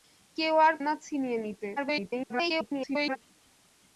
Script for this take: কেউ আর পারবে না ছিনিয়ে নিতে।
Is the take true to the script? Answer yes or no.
no